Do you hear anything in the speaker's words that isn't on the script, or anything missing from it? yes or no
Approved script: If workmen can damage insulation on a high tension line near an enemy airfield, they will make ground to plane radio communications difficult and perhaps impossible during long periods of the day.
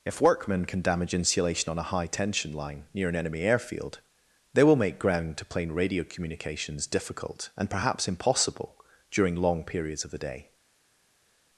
no